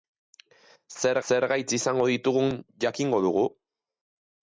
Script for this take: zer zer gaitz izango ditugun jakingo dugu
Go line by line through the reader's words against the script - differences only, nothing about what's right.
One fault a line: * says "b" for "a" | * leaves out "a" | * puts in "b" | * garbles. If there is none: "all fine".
all fine